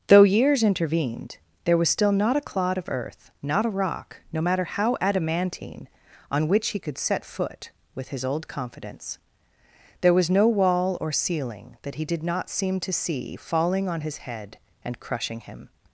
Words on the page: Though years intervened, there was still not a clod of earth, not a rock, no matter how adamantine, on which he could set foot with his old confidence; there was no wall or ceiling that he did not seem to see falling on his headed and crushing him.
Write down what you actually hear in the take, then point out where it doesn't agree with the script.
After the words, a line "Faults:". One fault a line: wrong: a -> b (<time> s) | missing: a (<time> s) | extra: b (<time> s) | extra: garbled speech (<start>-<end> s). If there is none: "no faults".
Though years intervened, there was still not a clod of earth, not a rock, no matter how adamantine, on which he could set foot with his old confidence; there was no wall or ceiling that he did not seem to see falling on his head and crushing him.
Faults:
wrong: headed -> head (14.2 s)